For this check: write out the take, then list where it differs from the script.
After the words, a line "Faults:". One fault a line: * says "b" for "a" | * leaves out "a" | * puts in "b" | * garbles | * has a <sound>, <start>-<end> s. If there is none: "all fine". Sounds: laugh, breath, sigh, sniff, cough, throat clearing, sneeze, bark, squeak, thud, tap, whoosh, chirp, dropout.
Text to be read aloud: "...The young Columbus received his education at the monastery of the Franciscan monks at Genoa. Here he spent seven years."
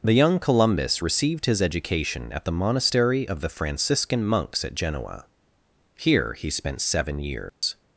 "...The young Columbus received his education at the monastery of the Franciscan monks at Genoa. Here he spent seven years."
Faults:
* has a dropout, 7.5-7.6 s